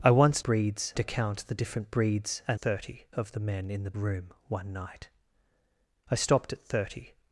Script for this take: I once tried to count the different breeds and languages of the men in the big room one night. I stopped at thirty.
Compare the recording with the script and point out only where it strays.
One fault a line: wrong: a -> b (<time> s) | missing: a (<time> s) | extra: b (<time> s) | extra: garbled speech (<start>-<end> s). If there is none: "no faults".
wrong: tried -> breeds (0.4 s)
wrong: languages -> thirty (2.6 s)
missing: big (3.9 s)